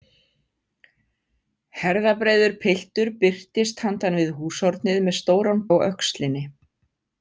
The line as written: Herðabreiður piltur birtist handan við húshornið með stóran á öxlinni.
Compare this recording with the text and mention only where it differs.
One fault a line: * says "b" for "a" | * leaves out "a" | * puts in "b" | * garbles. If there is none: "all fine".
all fine